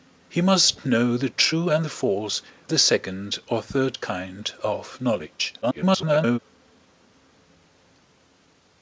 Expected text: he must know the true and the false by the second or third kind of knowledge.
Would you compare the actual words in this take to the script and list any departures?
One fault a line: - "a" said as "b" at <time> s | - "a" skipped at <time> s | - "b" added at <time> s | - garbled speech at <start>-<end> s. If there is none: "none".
- "by" skipped at 2.4 s
- garbled speech at 5.6-6.4 s